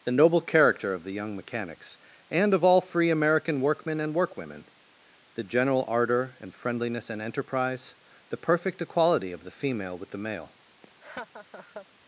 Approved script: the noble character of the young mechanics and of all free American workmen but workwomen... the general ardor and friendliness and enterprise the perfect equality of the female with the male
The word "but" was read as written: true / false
false